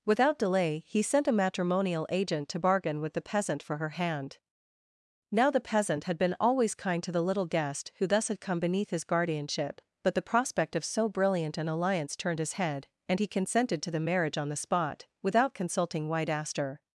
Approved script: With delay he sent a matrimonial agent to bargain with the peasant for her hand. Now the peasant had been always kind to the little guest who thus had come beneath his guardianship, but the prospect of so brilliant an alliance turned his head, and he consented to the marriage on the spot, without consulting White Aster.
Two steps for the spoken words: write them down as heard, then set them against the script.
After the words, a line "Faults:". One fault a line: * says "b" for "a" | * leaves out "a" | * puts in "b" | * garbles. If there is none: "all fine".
Without delay he sent a matrimonial agent to bargain with the peasant for her hand. Now the peasant had been always kind to the little guest who thus had come beneath his guardianship, but the prospect of so brilliant an alliance turned his head, and he consented to the marriage on the spot, without consulting White Aster.
Faults:
* says "Without" for "With"